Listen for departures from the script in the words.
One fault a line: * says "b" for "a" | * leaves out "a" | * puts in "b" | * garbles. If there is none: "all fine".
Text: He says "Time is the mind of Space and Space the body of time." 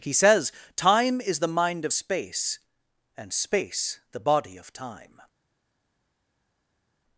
all fine